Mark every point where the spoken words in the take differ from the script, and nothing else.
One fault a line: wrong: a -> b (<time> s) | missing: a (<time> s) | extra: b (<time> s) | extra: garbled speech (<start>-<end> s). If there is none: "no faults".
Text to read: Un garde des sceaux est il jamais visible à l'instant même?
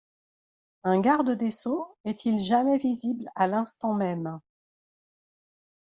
no faults